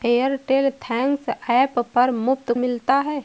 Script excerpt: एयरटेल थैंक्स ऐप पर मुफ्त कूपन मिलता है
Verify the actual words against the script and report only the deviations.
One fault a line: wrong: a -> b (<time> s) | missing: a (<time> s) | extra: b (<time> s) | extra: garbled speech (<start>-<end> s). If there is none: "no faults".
missing: कूपन (2.5 s)